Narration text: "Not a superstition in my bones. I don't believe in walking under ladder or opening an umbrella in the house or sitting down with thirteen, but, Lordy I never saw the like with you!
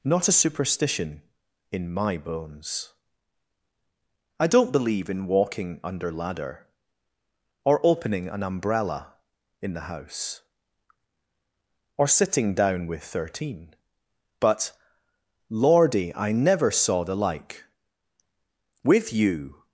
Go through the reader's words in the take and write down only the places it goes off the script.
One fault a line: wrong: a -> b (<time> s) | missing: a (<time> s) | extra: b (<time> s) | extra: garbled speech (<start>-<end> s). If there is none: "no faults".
no faults